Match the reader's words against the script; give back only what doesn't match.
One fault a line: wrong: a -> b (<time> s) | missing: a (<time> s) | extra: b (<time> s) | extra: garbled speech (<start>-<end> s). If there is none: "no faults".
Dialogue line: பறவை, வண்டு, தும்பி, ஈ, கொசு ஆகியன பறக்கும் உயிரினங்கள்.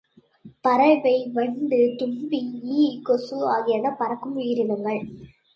no faults